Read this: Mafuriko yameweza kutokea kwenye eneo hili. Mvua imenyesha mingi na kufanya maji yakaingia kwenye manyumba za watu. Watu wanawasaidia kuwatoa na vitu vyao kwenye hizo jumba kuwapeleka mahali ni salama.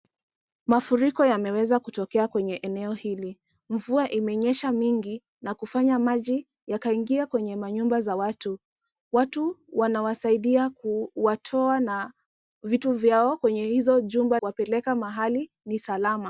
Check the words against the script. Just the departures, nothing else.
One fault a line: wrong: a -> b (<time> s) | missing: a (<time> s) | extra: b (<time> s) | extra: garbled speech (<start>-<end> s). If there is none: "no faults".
no faults